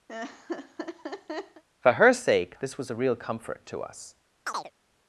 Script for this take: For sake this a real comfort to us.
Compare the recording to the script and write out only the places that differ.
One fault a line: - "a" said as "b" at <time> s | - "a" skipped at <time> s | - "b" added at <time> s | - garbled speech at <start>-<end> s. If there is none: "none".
- "her" added at 1.9 s
- "was" added at 2.8 s